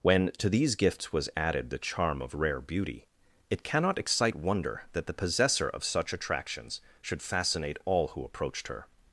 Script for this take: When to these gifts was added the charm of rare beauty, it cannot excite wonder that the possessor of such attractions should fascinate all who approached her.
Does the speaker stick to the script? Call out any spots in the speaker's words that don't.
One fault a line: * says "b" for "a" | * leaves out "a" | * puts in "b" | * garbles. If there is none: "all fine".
all fine